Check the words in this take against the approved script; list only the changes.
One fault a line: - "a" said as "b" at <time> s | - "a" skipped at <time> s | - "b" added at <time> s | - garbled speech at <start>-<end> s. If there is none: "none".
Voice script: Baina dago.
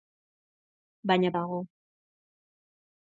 none